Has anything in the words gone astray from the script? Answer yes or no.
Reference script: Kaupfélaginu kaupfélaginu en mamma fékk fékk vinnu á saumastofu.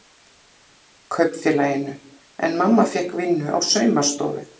yes